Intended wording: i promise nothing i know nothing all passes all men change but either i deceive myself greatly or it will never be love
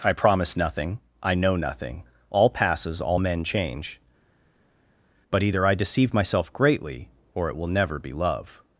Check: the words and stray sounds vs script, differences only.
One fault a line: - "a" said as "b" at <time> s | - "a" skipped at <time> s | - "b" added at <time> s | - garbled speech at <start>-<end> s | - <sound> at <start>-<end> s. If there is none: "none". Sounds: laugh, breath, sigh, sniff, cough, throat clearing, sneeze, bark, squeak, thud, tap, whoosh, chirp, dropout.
none